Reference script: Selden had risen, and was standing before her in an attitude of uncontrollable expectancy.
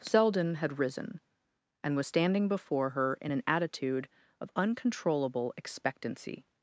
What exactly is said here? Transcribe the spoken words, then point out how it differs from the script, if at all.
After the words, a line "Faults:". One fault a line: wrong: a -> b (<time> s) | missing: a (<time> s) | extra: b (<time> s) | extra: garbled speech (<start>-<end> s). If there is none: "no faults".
Selden had risen, and was standing before her in an attitude of uncontrollable expectancy.
Faults:
no faults